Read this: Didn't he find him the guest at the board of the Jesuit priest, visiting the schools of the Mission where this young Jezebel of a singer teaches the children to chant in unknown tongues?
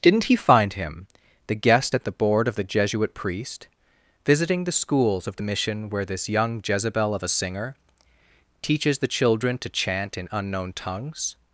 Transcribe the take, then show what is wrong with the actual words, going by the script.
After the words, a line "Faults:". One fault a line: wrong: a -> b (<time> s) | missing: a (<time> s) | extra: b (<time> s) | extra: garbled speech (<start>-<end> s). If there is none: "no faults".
Didn't he find him the guest at the board of the Jesuit priest, visiting the schools of the Mission where this young Jezebel of a singer teaches the children to chant in unknown tongues?
Faults:
no faults